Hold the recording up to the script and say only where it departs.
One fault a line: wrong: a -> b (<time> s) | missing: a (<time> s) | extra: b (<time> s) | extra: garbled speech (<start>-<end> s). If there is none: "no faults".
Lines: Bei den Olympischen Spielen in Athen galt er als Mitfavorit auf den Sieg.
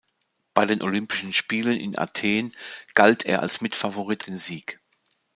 missing: auf (4.2 s)